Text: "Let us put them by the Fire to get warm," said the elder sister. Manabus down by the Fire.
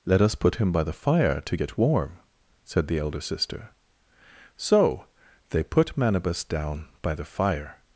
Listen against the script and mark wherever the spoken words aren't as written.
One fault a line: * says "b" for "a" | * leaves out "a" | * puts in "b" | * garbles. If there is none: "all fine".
* says "him" for "them"
* puts in "So they put"